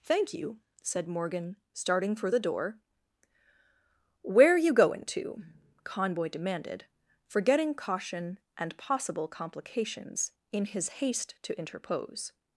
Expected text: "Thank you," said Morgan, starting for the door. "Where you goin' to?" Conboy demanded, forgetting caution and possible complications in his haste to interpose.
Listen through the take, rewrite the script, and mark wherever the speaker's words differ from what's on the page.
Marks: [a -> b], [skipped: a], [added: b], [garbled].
"Thank you," said Morgan, starting for the door. "Where you goin' to?" Conboy demanded, forgetting caution and possible complications in his haste to interpose.